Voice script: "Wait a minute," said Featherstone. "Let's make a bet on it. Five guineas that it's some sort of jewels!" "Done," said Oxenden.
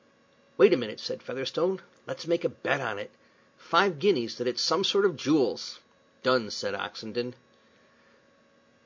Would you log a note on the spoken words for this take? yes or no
no